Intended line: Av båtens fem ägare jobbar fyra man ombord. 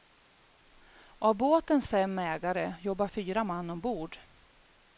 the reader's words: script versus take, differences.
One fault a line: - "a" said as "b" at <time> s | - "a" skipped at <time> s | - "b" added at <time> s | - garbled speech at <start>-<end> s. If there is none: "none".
none